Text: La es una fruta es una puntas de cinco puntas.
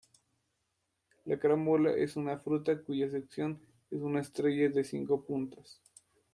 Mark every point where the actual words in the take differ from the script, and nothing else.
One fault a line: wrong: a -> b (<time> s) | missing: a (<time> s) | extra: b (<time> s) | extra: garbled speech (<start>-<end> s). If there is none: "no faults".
extra: carambola (1.4 s)
extra: cuya sección (2.8 s)
wrong: puntas -> estrella (4.2 s)